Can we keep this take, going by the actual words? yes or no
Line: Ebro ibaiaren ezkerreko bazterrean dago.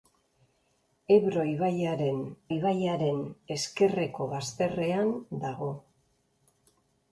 no